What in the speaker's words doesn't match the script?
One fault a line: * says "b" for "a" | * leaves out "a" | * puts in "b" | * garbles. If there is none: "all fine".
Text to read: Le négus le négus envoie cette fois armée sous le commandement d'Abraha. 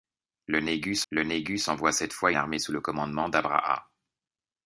all fine